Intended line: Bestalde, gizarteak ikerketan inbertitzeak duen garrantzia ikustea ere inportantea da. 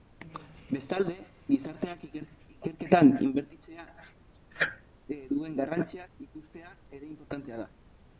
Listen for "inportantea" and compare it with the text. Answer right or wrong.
right